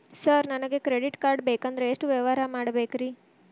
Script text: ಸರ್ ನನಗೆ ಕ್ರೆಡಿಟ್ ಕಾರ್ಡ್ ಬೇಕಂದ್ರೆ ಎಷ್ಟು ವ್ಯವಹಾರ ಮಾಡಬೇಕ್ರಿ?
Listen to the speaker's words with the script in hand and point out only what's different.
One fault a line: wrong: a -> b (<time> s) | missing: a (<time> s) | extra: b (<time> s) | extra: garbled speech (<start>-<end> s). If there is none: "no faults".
no faults